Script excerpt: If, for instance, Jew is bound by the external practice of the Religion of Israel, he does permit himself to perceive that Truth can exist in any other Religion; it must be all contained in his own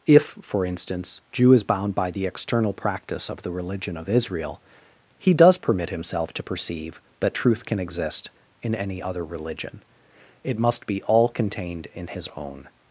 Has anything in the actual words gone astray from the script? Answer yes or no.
no